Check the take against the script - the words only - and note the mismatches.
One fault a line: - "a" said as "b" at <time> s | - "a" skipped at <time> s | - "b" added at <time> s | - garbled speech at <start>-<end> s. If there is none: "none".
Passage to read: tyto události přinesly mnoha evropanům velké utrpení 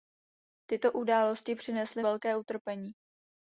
- "mnoha evropanům" skipped at 2.0 s